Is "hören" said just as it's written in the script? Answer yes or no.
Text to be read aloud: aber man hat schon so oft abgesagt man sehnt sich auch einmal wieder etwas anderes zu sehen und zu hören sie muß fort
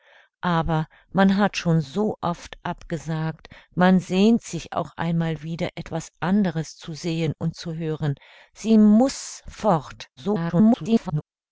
yes